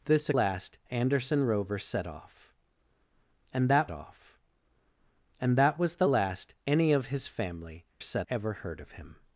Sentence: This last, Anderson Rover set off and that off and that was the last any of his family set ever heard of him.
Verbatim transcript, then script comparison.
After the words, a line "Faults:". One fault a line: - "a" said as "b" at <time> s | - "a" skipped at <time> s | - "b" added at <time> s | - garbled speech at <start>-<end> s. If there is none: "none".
This last, Anderson Rover set off and that off and that was the last any of his family set ever heard of him.
Faults:
none